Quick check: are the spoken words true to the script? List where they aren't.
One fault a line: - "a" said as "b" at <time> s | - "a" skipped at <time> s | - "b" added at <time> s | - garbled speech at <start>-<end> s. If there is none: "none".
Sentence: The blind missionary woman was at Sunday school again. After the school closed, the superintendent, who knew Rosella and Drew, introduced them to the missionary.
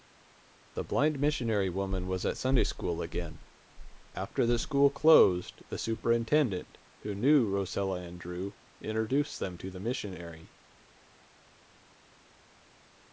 none